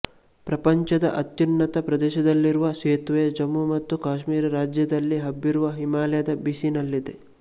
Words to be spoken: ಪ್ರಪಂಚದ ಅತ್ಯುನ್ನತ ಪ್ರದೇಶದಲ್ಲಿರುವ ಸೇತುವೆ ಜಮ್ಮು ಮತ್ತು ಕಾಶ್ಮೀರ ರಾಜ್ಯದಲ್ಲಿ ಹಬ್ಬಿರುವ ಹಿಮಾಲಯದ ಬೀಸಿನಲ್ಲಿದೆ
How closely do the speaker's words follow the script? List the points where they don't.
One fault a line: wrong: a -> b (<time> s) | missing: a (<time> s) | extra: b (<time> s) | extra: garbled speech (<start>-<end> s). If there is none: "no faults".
no faults